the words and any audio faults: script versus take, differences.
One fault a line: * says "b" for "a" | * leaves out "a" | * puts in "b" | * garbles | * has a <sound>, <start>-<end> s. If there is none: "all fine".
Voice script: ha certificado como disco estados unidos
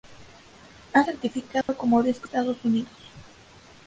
* has a dropout, 1.6-1.7 s